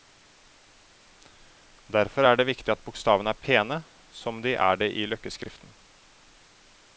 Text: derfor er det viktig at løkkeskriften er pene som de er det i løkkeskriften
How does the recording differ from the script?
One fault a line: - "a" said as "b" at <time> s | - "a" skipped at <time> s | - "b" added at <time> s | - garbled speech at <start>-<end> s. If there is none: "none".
- "løkkeskriften" said as "bokstavene" at 2.9 s